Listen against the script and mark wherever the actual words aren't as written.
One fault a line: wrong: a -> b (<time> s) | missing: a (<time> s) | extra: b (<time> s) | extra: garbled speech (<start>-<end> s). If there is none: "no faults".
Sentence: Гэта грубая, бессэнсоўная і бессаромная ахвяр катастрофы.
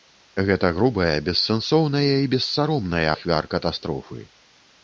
no faults